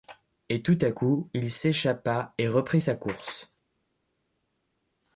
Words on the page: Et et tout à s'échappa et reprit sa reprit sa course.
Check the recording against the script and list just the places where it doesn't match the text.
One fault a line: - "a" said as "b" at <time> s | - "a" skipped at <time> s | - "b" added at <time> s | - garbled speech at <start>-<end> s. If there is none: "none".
- "et" skipped at 0.6 s
- "coup il" added at 0.9 s
- "reprit sa" skipped at 2.9 s